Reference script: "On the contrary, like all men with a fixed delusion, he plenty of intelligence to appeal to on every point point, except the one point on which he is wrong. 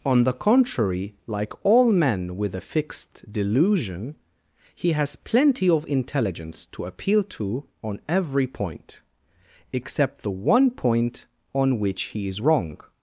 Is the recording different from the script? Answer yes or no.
yes